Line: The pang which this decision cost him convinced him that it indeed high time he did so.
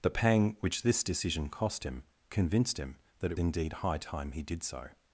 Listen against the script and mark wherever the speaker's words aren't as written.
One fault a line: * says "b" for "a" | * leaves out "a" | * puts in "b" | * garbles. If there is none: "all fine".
all fine